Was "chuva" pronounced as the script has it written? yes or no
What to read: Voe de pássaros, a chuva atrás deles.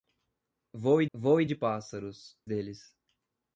no